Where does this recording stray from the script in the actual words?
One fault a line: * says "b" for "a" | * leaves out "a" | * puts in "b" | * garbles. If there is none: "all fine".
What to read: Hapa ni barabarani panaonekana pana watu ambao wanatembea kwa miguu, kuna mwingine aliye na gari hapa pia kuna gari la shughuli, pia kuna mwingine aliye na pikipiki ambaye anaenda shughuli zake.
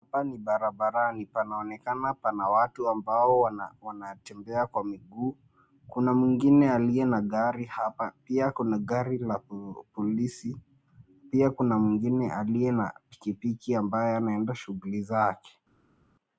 * says "polisi" for "shughuli"